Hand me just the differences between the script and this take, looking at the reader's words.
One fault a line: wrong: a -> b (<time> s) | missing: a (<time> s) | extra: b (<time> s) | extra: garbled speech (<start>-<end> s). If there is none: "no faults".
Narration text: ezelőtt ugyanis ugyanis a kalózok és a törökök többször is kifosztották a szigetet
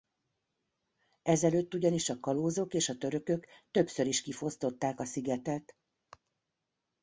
missing: ugyanis (2.1 s)